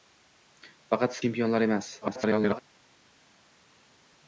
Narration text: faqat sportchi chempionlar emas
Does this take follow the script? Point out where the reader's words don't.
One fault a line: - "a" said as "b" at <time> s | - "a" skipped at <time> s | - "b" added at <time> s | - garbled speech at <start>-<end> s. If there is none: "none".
- "sportchi" skipped at 1.2 s
- garbled speech at 2.0-2.6 s